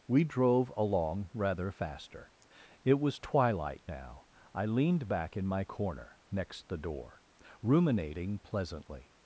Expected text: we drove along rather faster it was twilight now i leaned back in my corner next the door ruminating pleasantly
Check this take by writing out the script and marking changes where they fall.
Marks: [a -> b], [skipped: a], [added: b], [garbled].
we drove along rather faster it was twilight now i leaned back in my corner next the door ruminating pleasantly